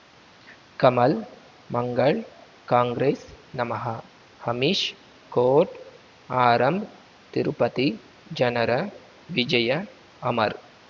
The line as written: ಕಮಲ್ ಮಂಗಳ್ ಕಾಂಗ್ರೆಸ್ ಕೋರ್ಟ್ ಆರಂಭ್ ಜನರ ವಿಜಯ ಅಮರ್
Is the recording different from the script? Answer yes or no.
yes